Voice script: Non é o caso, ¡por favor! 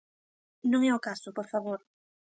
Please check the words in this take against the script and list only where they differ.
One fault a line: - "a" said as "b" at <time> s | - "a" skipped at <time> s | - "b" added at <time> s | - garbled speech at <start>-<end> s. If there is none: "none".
none